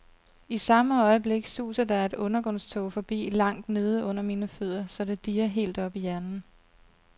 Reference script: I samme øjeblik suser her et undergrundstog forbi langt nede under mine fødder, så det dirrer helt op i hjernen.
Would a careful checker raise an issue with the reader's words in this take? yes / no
yes